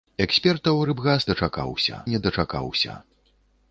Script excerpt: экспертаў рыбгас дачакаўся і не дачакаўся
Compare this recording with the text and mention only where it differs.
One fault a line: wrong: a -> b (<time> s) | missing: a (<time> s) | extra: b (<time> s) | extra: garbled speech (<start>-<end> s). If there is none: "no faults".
no faults